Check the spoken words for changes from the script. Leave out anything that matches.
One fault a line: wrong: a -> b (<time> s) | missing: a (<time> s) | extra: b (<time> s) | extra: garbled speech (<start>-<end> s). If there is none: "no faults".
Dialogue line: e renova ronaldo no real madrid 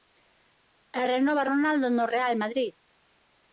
no faults